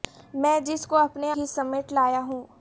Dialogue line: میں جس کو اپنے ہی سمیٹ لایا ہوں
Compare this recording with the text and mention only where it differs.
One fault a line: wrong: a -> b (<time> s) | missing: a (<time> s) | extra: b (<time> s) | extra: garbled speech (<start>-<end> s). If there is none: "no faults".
no faults